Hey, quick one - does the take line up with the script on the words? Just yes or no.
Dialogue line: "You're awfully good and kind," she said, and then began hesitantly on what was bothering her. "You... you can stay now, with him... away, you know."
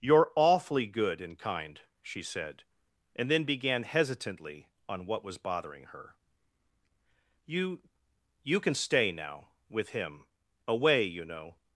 yes